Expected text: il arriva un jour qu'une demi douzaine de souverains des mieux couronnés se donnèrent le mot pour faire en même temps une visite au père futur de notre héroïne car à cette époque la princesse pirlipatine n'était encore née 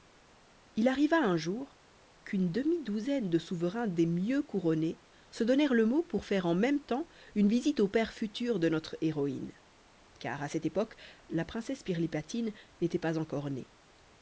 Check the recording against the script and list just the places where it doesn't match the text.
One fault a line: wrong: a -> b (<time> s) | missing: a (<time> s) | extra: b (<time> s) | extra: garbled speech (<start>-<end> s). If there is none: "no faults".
extra: pas (13.0 s)